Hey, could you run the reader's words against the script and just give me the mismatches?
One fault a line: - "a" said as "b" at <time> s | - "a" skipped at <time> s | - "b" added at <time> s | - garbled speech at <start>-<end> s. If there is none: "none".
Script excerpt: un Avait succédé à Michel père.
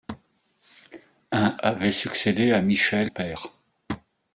none